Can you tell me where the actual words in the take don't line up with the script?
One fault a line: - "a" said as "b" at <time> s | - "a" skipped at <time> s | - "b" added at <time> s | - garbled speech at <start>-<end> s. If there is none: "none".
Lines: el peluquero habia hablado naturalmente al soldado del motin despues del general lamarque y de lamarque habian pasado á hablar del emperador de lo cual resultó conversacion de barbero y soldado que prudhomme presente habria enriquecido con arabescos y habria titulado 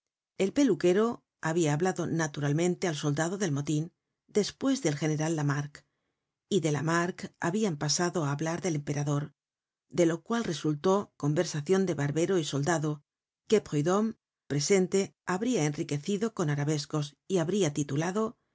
none